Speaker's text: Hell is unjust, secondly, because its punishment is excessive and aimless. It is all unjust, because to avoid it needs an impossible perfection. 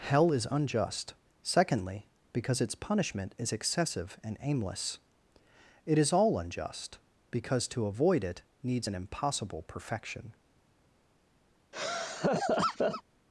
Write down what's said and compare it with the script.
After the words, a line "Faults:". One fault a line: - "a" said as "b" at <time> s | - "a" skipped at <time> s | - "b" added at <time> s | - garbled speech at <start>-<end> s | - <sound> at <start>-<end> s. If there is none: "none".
Hell is unjust, secondly, because its punishment is excessive and aimless. It is all unjust, because to avoid it needs an impossible perfection.
Faults:
- laugh at 11.7-13.0 s